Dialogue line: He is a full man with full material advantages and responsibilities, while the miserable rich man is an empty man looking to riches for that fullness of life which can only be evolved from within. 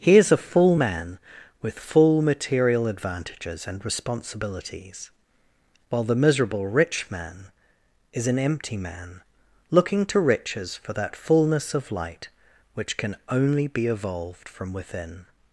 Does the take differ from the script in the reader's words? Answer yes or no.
yes